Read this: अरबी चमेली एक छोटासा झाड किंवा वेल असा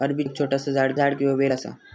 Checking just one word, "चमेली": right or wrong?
wrong